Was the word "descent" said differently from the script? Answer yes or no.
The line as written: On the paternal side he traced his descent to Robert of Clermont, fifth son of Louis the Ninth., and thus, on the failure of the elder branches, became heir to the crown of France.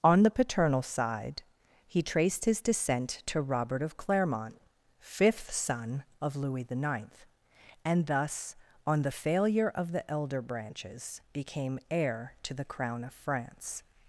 no